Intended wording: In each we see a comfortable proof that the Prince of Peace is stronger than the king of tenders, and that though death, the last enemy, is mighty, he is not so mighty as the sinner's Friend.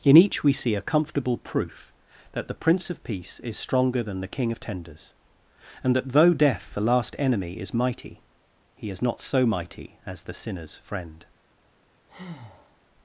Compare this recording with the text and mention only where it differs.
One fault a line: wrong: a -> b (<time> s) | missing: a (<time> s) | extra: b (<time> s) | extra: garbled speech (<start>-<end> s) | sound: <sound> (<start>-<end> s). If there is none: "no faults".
sound: breath (12.1-12.8 s)